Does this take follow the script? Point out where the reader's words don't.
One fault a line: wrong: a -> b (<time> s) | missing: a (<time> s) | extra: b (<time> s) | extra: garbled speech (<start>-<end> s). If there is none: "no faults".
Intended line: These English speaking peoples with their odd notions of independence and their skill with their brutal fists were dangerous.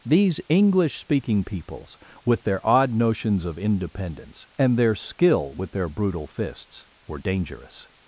no faults